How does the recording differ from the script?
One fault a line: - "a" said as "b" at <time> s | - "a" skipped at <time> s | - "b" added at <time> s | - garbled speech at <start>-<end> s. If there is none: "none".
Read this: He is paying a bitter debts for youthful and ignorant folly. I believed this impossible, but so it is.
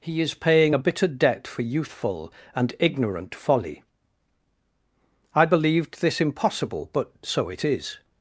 - "debts" said as "debt" at 1.1 s